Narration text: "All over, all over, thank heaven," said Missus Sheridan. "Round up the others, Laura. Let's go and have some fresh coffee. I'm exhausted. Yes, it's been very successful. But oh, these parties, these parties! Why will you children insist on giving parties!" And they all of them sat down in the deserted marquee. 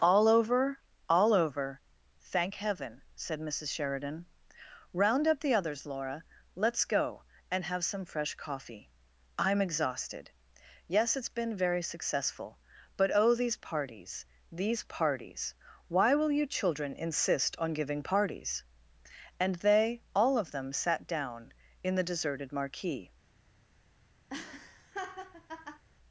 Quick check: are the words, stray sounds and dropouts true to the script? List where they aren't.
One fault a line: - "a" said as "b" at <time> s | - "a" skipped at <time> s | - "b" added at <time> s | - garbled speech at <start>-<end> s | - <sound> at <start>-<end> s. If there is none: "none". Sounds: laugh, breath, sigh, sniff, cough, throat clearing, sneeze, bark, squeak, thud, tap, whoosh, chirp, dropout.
- laugh at 24.3-25.8 s